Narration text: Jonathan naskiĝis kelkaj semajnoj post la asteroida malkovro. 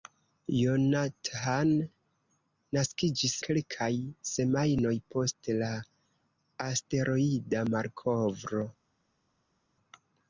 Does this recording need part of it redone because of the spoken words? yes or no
no